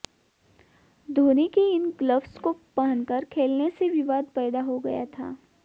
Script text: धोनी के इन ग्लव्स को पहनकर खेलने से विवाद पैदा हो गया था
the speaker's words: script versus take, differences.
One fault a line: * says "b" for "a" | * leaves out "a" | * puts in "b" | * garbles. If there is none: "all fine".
all fine